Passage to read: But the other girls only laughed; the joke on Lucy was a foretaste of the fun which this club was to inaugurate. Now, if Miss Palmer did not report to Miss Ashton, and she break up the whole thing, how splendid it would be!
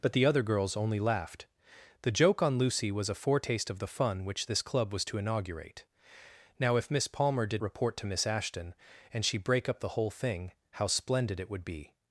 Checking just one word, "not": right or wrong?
wrong